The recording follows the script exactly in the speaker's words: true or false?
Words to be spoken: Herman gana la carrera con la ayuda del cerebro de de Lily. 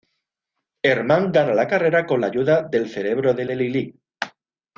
true